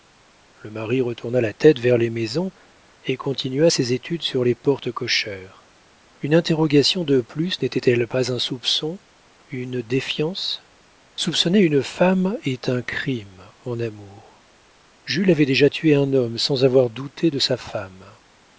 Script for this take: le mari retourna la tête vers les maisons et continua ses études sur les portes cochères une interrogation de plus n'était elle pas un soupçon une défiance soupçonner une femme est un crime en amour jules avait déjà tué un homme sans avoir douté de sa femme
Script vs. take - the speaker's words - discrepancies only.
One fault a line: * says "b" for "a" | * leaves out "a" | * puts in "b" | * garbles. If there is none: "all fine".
all fine